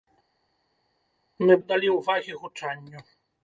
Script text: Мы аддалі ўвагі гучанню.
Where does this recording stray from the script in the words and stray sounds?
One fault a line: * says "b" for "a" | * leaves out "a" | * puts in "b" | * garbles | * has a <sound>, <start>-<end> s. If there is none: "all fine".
all fine